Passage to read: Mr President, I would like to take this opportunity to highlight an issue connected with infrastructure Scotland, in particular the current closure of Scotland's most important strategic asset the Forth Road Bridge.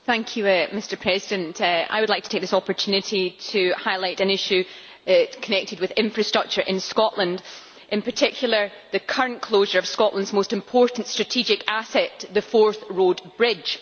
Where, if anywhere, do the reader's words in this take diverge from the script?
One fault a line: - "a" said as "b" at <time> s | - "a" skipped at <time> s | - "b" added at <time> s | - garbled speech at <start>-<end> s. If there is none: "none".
- "in" added at 6.6 s